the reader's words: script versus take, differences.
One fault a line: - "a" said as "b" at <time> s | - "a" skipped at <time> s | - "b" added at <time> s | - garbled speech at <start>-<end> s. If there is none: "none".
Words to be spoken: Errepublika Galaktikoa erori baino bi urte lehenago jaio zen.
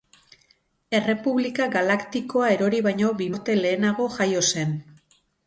none